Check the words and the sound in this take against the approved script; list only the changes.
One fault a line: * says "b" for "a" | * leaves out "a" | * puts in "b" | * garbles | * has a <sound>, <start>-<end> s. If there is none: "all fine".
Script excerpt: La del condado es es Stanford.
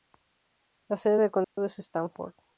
* puts in "sede"
* has a dropout, 1.4-1.6 s
* leaves out "es"